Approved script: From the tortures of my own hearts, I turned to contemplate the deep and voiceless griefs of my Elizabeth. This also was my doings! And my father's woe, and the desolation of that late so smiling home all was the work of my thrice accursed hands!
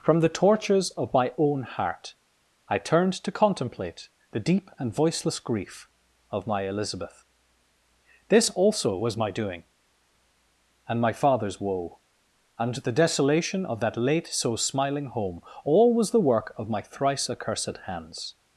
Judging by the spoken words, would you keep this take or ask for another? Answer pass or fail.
fail